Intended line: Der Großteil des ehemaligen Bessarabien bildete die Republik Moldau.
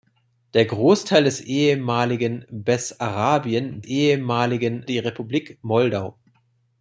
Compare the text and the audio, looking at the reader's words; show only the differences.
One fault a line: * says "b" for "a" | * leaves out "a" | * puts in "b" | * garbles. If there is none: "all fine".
* says "ehemaligen" for "bildete"